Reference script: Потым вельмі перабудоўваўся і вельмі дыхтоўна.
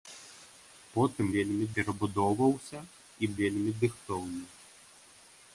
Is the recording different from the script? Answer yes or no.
no